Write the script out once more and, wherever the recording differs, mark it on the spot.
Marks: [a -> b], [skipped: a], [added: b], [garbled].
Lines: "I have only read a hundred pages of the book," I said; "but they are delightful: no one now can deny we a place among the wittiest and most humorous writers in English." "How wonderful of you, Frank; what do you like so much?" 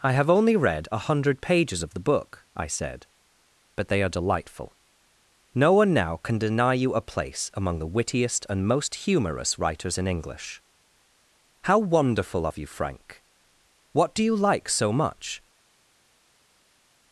"I have only read a hundred pages of the book," I said; "but they are delightful: no one now can deny [we -> you] a place among the wittiest and most humorous writers in English." "How wonderful of you, Frank; what do you like so much?"